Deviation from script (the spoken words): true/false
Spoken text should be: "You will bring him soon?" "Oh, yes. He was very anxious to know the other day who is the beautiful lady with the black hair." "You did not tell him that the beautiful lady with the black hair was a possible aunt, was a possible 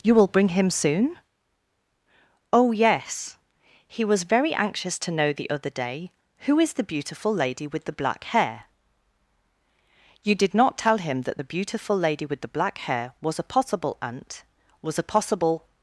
false